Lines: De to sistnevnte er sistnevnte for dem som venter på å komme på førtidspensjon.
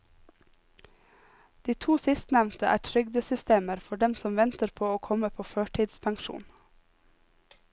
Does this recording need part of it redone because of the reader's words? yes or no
yes